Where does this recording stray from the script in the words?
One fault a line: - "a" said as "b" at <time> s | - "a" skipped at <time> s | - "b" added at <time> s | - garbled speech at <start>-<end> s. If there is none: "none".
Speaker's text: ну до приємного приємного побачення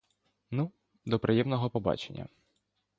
- "приємного" skipped at 1.7 s